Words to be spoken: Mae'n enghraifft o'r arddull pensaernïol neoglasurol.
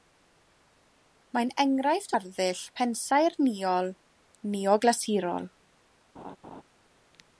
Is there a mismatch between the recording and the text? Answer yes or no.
yes